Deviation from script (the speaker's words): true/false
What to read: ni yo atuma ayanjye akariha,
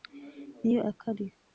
true